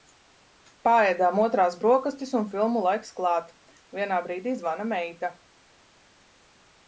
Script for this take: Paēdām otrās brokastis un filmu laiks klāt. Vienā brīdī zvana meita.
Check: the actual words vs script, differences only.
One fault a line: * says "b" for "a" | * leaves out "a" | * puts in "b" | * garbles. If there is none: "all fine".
all fine